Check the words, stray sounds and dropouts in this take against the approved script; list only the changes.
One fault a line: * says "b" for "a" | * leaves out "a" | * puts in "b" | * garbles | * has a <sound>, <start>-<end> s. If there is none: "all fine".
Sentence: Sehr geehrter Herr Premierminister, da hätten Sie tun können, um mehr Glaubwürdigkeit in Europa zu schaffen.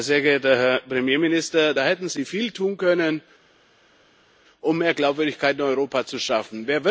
* puts in "viel"